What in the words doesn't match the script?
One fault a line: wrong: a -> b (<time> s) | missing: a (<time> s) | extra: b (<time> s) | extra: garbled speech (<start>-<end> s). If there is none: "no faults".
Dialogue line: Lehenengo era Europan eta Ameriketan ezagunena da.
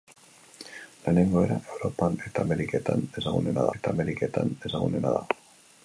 extra: eta Ameriketan ezagunena (3.8 s)